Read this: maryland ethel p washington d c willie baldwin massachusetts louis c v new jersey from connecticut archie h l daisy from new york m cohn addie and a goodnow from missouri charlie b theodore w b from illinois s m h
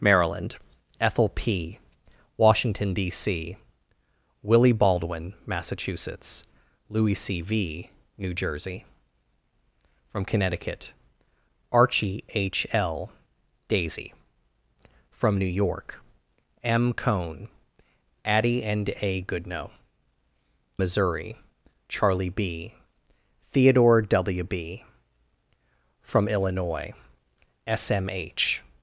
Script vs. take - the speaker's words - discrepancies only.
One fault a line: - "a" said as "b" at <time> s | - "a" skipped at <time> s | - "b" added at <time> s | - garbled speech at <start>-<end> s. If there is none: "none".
- "from" skipped at 19.7 s